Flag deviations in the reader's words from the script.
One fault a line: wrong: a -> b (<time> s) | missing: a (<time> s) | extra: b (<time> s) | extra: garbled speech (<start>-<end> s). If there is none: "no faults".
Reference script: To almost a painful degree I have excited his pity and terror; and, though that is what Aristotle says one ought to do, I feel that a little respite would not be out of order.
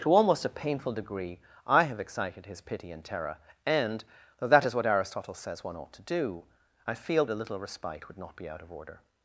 missing: that (7.2 s)